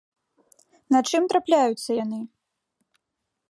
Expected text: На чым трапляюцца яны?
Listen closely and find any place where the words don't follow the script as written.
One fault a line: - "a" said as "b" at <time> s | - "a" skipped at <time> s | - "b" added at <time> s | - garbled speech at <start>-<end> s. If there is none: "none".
none